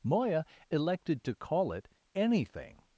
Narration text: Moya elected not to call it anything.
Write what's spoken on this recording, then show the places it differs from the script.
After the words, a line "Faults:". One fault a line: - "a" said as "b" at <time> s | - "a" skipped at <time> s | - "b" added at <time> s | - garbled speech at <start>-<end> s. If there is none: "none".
Moya elected to call it anything.
Faults:
- "not" skipped at 1.2 s